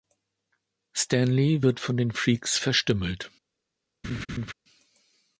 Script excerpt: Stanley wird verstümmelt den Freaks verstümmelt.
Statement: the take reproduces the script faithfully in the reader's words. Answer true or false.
false